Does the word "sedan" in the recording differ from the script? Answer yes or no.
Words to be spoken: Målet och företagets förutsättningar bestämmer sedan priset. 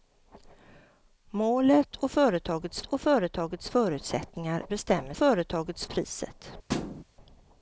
yes